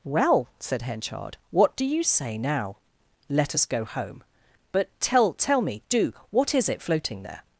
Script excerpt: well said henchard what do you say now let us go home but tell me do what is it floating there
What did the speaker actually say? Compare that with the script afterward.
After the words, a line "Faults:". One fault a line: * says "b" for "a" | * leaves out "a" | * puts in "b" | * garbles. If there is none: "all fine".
well said henchard what do you say now let us go home but tell tell me do what is it floating there
Faults:
* puts in "tell"